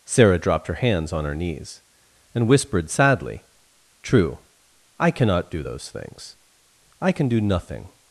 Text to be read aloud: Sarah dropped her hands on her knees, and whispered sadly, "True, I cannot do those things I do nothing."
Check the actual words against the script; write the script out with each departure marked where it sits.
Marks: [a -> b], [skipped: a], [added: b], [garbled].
Sarah dropped her hands on her knees, and whispered sadly, "True, I cannot do those things I [added: can] do nothing."